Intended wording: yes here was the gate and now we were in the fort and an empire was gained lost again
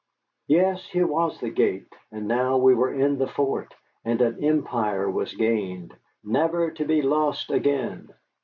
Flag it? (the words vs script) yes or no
yes